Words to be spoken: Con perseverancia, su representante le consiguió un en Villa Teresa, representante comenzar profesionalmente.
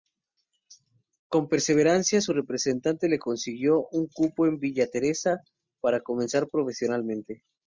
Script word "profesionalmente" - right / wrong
right